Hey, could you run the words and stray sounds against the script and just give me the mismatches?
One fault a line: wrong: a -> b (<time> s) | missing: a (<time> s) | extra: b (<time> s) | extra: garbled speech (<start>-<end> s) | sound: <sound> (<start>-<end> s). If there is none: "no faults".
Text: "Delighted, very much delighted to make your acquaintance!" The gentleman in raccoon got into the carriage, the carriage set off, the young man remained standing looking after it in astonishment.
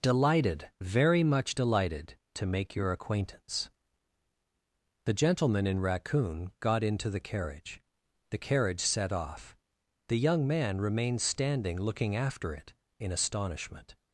no faults